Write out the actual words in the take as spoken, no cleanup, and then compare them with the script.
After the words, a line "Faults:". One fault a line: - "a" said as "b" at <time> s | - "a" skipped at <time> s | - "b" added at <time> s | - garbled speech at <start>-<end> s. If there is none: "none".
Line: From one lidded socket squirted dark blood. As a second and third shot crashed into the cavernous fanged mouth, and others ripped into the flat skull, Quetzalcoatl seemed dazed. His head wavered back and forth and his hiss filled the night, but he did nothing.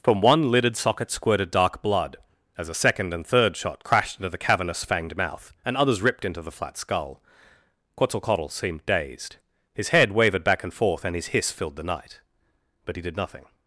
From one lidded socket squirted dark blood. As a second and third shot crashed into the cavernous fanged mouth, and others ripped into the flat skull, Quetzalcoatl seemed dazed. His head wavered back and forth and his hiss filled the night, but he did nothing.
Faults:
none